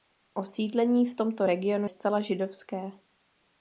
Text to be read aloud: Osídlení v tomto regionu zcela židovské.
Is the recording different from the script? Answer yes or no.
no